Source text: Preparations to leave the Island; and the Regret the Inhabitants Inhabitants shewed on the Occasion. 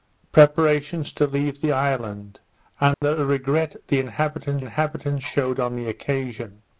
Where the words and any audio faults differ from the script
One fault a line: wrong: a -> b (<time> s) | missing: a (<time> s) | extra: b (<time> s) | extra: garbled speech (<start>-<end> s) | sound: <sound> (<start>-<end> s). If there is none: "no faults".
sound: dropout (2.9-3.0 s)